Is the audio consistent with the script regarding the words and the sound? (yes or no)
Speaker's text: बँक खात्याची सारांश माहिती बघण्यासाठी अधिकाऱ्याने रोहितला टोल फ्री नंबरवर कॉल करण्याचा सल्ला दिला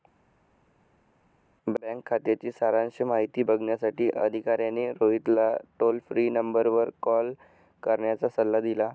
yes